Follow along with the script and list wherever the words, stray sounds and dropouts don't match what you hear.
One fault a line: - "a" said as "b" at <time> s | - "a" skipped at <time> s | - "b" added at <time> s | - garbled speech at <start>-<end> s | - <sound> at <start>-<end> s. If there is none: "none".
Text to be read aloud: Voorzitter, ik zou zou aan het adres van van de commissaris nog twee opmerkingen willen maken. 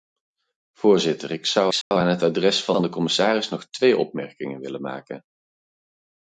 - dropout at 1.8-1.9 s